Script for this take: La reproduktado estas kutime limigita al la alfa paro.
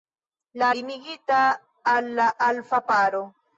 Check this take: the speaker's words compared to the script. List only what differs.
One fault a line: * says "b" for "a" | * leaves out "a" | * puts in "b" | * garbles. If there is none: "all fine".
* leaves out "reproduktado estas kutime"